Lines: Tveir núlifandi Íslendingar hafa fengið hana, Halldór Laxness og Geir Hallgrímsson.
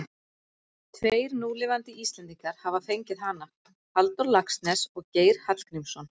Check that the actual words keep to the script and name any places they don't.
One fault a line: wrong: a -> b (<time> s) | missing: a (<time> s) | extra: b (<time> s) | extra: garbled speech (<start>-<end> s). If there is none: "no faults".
no faults